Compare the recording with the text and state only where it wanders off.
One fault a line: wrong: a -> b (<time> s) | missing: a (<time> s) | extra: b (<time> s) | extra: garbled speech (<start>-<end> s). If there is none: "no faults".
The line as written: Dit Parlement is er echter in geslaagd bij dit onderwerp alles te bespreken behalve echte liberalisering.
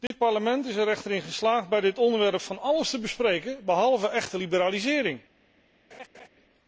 extra: van (2.4 s)